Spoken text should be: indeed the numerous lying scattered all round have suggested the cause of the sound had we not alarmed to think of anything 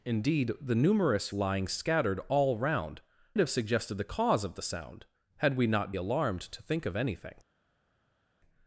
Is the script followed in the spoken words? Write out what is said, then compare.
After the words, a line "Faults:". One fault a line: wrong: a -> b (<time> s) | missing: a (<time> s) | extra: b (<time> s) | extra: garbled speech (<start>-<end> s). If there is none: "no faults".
indeed the numerous lying scattered all round have suggested the cause of the sound had we not alarmed to think of anything
Faults:
no faults